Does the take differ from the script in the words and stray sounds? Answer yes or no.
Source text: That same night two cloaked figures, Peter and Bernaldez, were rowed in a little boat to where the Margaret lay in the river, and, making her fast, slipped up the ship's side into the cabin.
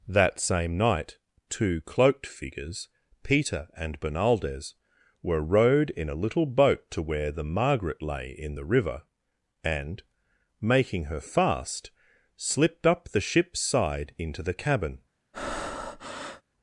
yes